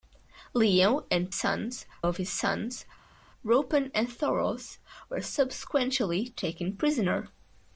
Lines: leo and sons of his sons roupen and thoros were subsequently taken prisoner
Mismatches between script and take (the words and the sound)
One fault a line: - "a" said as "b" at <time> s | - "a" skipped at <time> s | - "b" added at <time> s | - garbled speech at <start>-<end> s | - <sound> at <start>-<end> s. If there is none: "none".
none